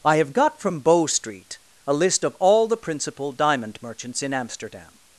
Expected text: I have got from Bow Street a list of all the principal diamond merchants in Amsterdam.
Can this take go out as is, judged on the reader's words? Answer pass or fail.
pass